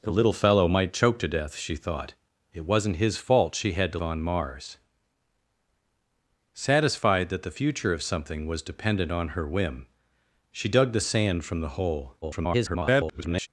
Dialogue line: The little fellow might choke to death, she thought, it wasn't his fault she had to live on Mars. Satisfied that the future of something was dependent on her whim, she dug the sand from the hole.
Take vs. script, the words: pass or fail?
fail